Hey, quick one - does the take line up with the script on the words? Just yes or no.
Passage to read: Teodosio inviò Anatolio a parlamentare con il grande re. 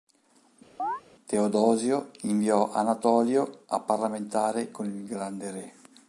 yes